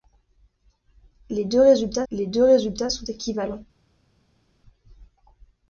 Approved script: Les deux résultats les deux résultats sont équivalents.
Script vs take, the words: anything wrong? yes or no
no